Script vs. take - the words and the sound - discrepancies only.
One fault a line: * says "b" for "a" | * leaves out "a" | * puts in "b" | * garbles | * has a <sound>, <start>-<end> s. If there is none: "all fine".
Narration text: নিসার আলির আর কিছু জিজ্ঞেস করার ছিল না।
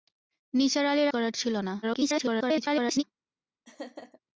* leaves out "আর কিছু জিজ্ঞেস"
* garbles
* has a laugh, 3.7-4.2 s